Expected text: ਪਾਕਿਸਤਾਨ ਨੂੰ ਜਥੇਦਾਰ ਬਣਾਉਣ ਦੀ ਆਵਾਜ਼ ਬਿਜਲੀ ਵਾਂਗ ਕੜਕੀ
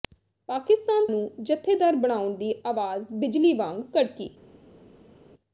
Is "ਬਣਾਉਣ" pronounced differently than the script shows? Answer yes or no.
no